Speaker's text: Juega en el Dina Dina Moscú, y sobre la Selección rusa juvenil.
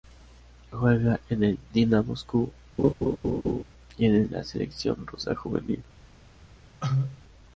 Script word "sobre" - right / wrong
wrong